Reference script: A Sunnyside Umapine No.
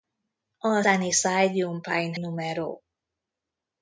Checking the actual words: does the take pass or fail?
pass